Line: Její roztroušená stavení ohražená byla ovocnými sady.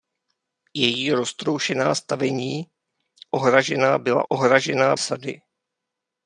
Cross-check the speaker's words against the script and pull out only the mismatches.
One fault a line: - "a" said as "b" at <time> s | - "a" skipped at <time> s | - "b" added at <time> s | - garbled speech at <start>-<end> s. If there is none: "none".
- "ovocnými" said as "ohražená" at 4.3 s